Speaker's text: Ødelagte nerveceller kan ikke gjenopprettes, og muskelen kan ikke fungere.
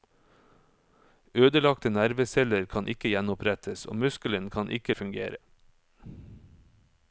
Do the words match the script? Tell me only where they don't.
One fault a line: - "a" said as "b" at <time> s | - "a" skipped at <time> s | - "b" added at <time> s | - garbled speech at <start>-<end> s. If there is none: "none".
none